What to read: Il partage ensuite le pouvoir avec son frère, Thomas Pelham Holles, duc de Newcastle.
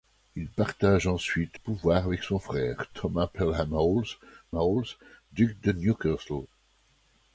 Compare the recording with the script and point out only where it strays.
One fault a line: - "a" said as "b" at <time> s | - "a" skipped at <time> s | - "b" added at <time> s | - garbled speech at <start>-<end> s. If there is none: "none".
- "le" skipped at 1.6 s
- "Holles" added at 4.5 s